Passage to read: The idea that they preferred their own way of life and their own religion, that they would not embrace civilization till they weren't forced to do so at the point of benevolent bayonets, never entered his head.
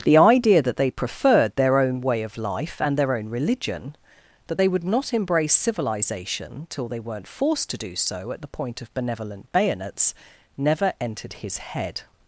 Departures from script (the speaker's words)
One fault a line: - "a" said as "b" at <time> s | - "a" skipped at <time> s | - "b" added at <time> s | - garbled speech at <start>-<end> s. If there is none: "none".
none